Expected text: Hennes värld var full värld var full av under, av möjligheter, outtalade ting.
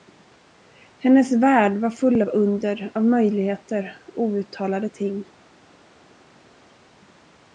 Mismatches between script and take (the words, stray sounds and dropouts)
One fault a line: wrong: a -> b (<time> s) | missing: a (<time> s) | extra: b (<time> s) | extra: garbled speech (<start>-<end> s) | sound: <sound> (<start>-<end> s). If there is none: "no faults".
missing: värld var full (2.2 s)